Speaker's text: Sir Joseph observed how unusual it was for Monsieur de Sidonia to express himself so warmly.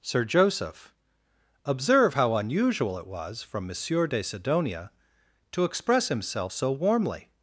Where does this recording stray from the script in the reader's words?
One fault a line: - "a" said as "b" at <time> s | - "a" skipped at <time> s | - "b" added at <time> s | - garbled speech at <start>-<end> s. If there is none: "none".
- "observed" said as "observe" at 1.6 s
- "for" said as "from" at 3.4 s